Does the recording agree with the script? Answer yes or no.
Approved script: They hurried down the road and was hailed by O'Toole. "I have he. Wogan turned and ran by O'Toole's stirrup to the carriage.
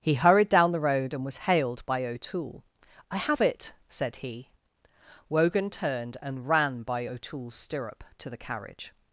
no